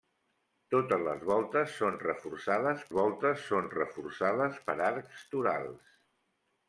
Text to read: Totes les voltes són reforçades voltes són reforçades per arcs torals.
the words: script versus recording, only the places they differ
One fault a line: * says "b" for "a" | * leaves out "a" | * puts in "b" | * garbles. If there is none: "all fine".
all fine